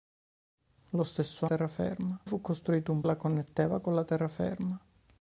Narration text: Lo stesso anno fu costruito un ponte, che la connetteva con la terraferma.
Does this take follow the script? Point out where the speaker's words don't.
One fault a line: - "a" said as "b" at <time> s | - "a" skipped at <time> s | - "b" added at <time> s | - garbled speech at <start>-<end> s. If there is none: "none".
- "anno" said as "terraferma" at 1.5 s
- "ponte che" skipped at 3.0 s